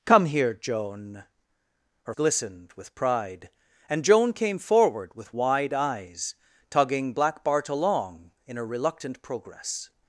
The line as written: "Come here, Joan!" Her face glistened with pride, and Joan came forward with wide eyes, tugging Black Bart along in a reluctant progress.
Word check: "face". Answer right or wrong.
wrong